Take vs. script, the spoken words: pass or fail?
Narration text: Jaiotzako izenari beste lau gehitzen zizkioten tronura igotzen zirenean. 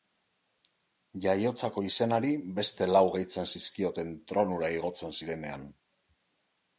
pass